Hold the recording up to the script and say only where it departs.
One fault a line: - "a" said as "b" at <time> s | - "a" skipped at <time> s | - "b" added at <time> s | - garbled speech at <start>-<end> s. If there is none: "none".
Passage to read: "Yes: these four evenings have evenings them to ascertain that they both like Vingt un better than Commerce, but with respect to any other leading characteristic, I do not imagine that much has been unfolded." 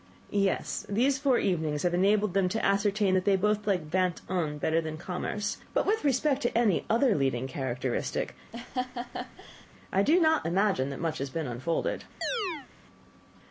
- "evenings" said as "enabled" at 1.9 s